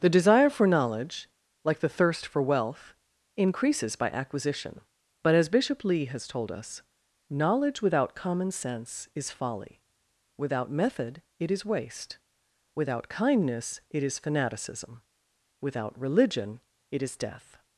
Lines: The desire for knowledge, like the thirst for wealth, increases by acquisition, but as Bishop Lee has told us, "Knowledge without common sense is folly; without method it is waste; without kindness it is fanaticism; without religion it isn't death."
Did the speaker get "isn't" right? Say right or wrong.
wrong